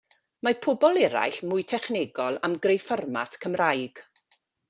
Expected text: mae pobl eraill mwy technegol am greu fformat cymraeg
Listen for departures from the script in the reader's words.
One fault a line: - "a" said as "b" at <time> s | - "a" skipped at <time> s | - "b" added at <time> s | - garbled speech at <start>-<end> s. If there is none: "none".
none